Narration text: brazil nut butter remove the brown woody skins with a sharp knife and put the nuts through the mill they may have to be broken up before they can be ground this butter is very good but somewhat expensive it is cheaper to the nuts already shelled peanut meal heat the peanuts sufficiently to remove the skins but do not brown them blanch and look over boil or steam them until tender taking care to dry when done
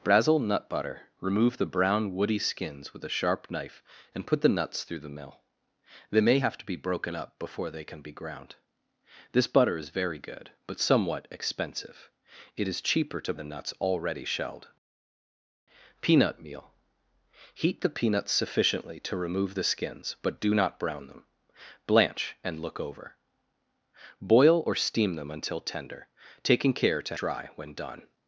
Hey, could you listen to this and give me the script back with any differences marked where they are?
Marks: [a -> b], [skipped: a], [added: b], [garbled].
brazil nut butter remove the brown woody skins with a sharp knife and put the nuts through the mill they may have to be broken up before they can be ground this butter is very good but somewhat expensive it is cheaper to the nuts already shelled peanut meal heat the peanuts sufficiently to remove the skins but do not brown them blanch and look over boil or steam them until tender taking care to dry when done